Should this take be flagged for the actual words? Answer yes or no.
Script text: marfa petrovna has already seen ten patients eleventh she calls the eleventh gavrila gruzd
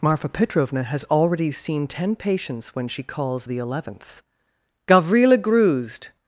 yes